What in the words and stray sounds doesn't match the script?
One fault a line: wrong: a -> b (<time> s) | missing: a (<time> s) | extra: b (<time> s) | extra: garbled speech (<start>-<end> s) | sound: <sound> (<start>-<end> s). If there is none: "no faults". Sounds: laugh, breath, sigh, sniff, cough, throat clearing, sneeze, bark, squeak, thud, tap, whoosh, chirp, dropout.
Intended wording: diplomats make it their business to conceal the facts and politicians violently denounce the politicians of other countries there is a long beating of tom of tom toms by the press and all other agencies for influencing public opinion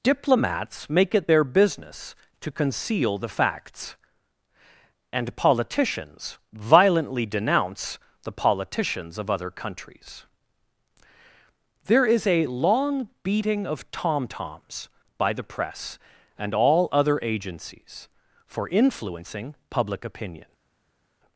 missing: of tom (14.3 s)